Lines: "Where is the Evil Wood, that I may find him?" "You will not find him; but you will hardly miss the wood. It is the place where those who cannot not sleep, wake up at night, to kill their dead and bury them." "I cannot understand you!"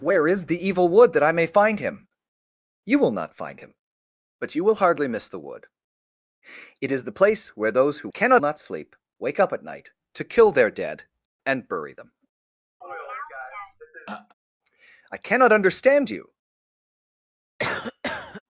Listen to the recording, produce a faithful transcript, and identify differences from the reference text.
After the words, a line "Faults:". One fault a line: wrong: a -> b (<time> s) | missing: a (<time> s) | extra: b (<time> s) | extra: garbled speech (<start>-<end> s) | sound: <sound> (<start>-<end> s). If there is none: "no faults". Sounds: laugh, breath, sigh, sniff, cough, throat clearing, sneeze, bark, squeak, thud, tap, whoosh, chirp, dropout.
"Where is the Evil Wood, that I may find him?" "You will not find him; but you will hardly miss the wood. It is the place where those who cannot not sleep, wake up at night, to kill their dead and bury them." "I cannot understand you!"
Faults:
sound: throat clearing (12.8-14.3 s)
sound: cough (17.6-18.4 s)